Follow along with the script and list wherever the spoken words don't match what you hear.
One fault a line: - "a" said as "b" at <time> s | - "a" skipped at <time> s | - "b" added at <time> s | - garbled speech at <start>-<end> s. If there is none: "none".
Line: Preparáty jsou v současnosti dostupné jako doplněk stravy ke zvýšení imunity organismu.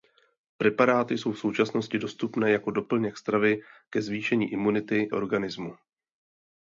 none